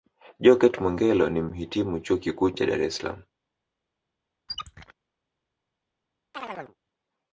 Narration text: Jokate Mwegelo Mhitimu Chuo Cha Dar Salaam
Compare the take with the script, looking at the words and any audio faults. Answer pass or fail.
fail